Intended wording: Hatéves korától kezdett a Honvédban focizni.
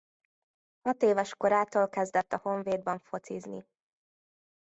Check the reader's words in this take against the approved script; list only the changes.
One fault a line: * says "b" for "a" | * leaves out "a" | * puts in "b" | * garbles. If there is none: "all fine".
all fine